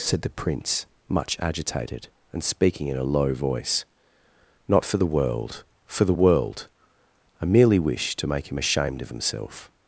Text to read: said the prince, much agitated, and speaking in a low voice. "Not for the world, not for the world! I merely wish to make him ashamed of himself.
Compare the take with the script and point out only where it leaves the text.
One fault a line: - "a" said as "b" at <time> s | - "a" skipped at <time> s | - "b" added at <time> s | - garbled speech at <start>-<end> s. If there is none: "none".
- "not" skipped at 5.6 s